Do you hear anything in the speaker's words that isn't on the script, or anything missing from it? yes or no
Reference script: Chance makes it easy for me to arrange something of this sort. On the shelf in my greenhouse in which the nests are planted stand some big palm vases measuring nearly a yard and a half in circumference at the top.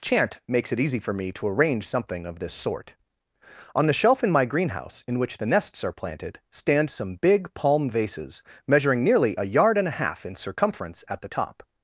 yes